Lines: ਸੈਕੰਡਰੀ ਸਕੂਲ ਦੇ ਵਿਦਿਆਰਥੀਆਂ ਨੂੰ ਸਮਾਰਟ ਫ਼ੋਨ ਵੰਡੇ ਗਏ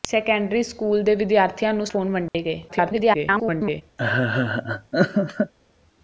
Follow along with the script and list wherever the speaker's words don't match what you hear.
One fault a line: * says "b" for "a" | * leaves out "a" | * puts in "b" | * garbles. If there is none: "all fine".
* leaves out "ਸਮਾਰਟ"
* garbles